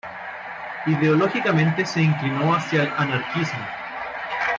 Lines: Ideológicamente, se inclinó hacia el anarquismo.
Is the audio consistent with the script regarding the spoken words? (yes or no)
yes